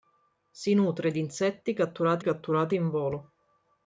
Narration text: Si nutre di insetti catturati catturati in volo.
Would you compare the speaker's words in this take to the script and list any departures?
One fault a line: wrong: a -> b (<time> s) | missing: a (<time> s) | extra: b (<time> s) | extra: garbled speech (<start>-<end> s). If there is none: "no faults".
no faults